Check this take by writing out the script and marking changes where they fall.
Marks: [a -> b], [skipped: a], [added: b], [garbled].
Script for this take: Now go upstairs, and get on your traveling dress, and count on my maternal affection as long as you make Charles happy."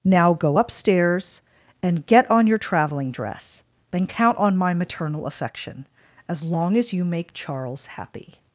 Now go upstairs, and get on your traveling dress, [and -> then] count on my maternal affection as long as you make Charles happy."